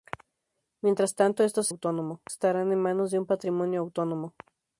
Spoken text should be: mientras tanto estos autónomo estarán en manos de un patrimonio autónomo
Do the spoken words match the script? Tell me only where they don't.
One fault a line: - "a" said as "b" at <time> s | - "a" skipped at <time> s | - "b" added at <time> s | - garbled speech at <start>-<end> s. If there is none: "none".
none